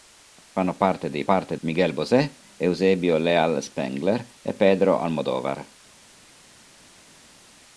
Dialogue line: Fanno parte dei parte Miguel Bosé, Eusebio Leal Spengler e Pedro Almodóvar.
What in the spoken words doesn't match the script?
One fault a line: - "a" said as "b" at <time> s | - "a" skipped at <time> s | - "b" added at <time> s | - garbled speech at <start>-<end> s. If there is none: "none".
none